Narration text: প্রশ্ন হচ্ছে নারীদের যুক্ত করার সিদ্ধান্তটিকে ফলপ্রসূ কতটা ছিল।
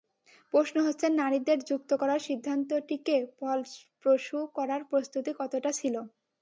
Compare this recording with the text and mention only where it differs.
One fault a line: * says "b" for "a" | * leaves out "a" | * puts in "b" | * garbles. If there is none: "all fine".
* puts in "করার প্রস্তুতি"